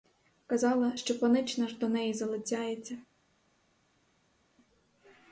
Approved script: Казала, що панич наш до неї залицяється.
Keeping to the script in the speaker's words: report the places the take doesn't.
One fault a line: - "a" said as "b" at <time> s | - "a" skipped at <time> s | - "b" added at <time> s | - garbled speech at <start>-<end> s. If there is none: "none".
none